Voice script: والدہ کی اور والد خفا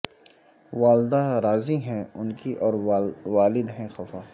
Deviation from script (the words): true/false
true